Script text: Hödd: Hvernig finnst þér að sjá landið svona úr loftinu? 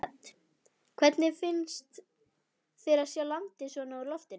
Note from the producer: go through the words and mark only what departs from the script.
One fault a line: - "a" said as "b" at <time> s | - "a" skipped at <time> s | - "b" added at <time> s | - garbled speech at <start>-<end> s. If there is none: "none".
none